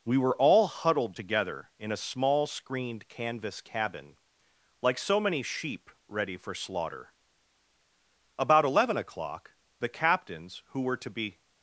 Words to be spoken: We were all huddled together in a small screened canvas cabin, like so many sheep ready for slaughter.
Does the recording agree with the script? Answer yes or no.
no